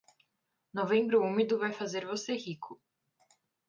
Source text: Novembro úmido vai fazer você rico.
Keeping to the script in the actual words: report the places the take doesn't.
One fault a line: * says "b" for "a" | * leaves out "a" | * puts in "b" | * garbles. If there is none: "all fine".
all fine